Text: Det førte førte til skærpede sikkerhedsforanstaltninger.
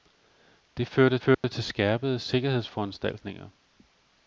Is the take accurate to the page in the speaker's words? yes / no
yes